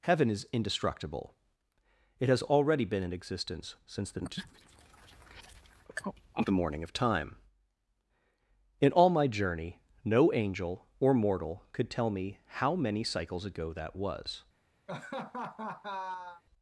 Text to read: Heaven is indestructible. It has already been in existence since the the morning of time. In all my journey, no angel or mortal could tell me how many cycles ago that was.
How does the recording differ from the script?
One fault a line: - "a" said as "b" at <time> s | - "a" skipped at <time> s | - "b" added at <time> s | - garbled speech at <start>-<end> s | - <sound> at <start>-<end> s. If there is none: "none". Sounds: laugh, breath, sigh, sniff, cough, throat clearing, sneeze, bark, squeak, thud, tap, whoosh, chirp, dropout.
- laugh at 14.9-16.4 s